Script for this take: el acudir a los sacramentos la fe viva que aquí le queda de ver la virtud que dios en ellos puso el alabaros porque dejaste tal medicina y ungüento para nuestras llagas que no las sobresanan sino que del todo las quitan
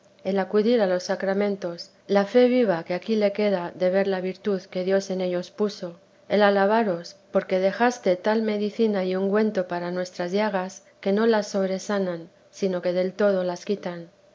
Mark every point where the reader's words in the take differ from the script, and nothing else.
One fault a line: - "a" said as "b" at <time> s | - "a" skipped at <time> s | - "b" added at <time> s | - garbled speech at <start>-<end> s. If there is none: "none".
none